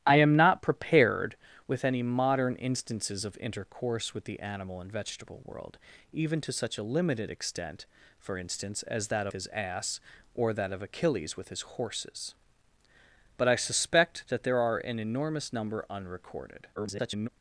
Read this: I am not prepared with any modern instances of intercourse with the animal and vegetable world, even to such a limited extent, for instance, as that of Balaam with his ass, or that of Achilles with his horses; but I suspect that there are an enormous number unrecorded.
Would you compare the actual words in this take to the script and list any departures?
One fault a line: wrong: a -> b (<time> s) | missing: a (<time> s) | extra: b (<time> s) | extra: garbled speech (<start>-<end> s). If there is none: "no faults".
missing: of Balaam with (9.3 s)
extra: garbled speech (16.8-17.3 s)